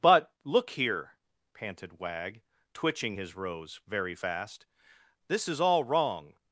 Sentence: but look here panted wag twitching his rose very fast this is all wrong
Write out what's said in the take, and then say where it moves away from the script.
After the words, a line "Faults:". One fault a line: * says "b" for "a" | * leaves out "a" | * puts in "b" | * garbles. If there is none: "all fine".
but look here panted wag twitching his rose very fast this is all wrong
Faults:
all fine